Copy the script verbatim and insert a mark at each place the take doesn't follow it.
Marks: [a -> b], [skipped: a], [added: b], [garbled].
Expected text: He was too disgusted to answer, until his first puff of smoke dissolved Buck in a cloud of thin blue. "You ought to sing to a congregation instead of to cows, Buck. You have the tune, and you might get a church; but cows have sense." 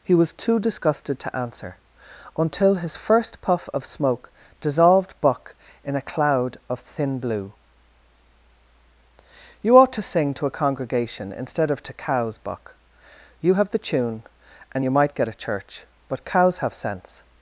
He was too disgusted to answer, until his first puff of smoke dissolved Buck in a cloud of thin blue. "You ought to sing to a congregation instead of to cows, Buck. You have the tune, and you might get a church; but cows have sense."